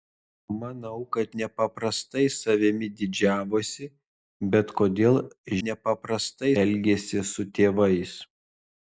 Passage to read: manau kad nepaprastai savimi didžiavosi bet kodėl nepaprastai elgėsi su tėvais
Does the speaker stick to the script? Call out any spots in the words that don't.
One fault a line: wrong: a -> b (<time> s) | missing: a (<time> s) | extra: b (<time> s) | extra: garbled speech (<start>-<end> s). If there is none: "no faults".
no faults